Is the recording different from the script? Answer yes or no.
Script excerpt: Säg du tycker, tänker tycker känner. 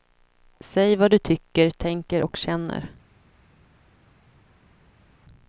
yes